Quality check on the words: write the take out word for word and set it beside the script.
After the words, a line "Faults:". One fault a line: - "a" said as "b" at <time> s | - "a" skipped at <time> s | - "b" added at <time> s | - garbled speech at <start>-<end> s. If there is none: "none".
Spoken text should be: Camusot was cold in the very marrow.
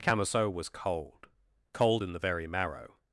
Camusot was cold cold in the very marrow.
Faults:
- "cold" added at 1.7 s